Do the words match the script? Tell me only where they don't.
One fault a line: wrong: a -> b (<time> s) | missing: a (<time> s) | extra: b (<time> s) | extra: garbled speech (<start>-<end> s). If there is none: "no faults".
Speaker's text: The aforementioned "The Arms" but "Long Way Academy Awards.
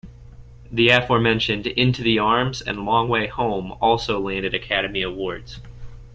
extra: Into (1.7 s)
wrong: but -> and (2.6 s)
extra: Home also landed (3.3 s)